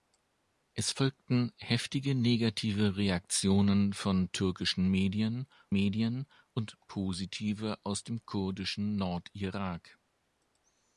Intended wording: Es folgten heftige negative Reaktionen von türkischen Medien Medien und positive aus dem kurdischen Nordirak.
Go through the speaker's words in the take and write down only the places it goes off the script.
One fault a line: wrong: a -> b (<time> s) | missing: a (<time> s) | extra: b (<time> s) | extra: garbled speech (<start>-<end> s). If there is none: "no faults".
no faults